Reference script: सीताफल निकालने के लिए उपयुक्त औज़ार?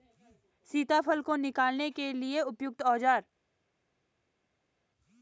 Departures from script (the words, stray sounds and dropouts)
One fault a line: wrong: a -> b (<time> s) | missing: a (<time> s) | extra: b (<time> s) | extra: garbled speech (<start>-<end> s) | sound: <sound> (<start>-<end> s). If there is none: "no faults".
extra: को (1.2 s)